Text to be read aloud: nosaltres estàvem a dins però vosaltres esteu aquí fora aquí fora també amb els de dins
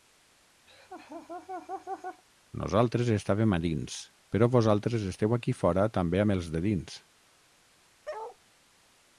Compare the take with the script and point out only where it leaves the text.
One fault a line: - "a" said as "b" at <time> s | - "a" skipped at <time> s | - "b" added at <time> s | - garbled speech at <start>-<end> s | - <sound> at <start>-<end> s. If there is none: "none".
- laugh at 0.7-2.2 s
- "aquí fora" skipped at 5.9 s
- bark at 8.0-8.4 s